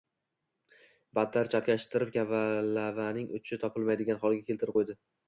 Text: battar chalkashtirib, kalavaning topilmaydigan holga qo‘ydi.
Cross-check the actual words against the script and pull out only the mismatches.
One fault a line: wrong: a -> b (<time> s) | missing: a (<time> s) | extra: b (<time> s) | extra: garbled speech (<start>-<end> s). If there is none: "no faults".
extra: uchi (3.4 s)
extra: keltirib (4.5 s)